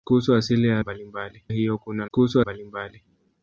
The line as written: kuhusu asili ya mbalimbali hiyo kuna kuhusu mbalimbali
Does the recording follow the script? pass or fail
pass